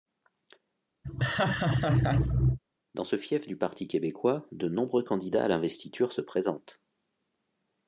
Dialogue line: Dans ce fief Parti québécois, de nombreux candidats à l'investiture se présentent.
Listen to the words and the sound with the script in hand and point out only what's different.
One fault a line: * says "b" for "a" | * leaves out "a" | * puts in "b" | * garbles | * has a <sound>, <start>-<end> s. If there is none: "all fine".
* has a laugh, 1.0-2.6 s
* puts in "du"